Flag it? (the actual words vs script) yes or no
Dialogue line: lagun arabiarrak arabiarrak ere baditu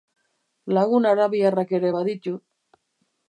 yes